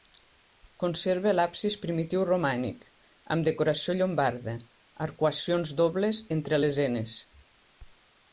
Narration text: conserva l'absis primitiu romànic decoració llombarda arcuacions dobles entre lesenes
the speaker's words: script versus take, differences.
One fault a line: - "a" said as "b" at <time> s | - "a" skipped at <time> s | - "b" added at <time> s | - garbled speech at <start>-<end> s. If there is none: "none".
- "amb" added at 3.4 s